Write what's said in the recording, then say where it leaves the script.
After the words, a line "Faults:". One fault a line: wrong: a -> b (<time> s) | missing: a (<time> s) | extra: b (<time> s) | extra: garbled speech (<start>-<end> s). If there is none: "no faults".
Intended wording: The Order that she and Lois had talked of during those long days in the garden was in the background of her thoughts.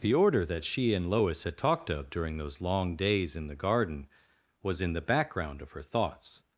The Order that she and Lois had talked of during those long days in the garden was in the background of her thoughts.
Faults:
no faults